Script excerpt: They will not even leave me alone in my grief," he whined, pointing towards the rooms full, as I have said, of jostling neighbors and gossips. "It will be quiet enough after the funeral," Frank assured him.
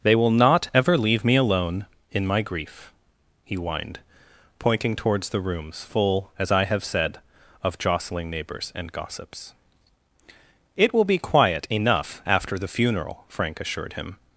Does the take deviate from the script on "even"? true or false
true